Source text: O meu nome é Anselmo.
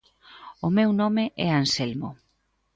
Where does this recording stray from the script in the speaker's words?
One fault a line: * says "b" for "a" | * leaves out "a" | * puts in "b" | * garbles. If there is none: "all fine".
all fine